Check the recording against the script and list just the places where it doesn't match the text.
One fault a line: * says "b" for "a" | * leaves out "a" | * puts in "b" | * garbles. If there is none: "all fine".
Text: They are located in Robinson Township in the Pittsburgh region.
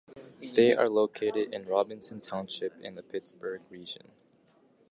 all fine